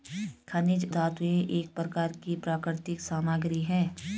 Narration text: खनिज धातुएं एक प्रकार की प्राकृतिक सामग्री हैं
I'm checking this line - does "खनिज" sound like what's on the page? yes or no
yes